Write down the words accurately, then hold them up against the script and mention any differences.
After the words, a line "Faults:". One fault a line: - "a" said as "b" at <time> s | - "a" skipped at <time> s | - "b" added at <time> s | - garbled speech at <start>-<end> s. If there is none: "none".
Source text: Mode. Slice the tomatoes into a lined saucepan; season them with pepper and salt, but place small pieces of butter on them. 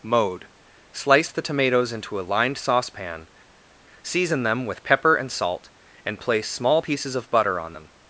Mode. Slice the tomatoes into a lined saucepan; season them with pepper and salt, and place small pieces of butter on them.
Faults:
- "but" said as "and" at 6.1 s